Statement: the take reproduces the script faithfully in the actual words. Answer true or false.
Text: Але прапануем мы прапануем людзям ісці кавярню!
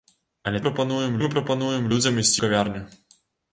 true